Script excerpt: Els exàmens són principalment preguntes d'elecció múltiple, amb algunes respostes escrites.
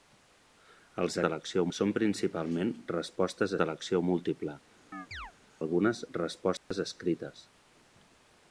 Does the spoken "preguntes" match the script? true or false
false